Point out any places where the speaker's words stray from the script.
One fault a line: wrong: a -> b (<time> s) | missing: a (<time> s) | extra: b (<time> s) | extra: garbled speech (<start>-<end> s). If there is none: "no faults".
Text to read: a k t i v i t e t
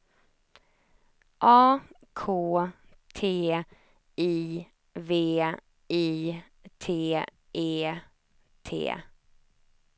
no faults